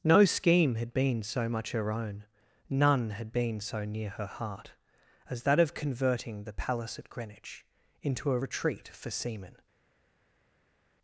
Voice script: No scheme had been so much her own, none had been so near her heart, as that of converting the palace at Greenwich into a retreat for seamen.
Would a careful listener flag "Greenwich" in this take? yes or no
no